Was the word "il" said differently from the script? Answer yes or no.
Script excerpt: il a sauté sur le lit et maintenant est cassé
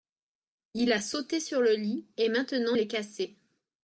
no